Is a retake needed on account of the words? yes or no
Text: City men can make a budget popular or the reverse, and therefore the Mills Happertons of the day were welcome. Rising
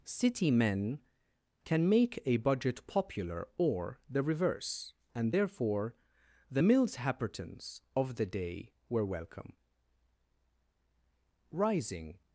no